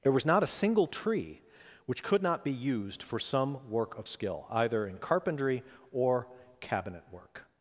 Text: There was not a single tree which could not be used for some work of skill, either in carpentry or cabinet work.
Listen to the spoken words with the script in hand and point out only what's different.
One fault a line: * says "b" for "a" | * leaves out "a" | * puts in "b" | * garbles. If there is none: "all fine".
all fine